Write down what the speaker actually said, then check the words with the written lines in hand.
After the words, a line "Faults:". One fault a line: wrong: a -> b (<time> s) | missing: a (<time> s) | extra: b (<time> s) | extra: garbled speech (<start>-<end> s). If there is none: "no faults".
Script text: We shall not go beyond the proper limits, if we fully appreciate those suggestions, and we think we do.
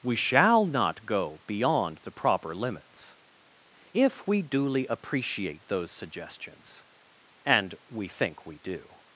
We shall not go beyond the proper limits, if we duly appreciate those suggestions, and we think we do.
Faults:
wrong: fully -> duly (4.4 s)